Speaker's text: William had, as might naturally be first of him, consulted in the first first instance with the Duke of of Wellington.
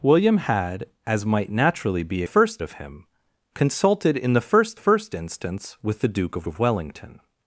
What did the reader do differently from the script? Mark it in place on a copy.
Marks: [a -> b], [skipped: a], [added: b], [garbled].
William had, as might naturally be first of him, consulted in the first first instance with the Duke of of Wellington.